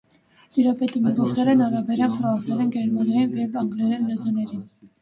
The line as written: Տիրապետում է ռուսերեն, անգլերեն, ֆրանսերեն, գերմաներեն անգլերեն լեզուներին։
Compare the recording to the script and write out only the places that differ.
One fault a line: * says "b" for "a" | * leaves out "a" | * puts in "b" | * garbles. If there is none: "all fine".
* says "արաբերեն" for "անգլերեն"
* puts in "և"